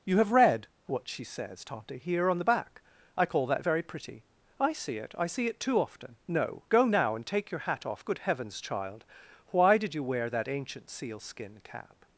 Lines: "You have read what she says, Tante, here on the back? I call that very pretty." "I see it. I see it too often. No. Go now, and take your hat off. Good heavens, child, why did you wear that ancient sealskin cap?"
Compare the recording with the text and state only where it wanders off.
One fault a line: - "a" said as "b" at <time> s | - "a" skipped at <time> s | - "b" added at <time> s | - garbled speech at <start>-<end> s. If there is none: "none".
none